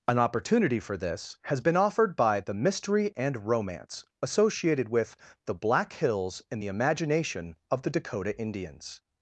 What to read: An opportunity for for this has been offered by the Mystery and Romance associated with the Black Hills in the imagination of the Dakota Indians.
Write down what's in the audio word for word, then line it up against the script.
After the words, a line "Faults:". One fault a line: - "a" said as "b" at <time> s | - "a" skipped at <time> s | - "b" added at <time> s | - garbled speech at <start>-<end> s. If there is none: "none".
An opportunity for this has been offered by the Mystery and Romance associated with the Black Hills in the imagination of the Dakota Indians.
Faults:
- "for" skipped at 1.0 s